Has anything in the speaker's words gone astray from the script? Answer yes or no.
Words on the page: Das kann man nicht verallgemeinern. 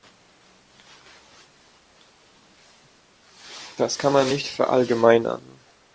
no